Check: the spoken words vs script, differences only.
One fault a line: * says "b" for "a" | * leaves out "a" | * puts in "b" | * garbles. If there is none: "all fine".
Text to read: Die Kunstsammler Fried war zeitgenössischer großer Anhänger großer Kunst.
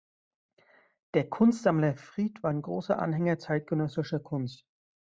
* says "Der" for "Die"
* says "ein" for "zeitgenössischer"
* says "zeitgenössischer" for "großer"